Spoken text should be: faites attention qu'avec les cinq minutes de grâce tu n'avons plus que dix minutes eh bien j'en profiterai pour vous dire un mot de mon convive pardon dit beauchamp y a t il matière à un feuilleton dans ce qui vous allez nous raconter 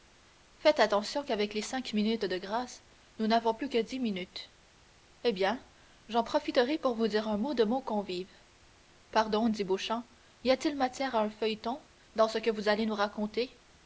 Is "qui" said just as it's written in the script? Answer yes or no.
no